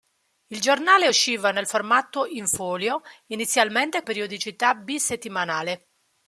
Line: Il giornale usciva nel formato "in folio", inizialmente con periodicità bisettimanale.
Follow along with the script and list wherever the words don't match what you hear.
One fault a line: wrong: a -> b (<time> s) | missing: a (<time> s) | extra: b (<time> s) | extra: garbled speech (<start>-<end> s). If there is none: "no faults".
missing: con (4.0 s)